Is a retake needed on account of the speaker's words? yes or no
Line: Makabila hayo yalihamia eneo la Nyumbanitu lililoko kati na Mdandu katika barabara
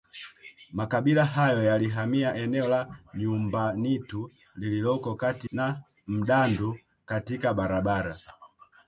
no